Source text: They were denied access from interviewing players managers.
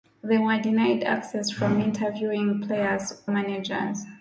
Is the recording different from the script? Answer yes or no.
no